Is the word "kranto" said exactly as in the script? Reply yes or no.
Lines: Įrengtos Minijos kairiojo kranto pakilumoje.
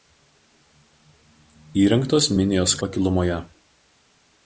no